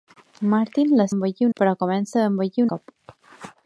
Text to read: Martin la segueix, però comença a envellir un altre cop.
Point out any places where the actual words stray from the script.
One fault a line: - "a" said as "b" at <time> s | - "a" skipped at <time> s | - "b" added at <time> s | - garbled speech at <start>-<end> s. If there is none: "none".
- "segueix" said as "envellir" at 1.1 s
- "un altre" skipped at 2.7 s